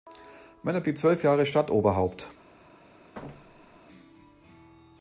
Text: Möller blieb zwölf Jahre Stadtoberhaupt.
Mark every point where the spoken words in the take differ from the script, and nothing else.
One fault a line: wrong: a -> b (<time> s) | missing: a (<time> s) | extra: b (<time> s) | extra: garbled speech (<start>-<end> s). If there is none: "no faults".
no faults